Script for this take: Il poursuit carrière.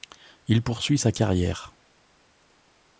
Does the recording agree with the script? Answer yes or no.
no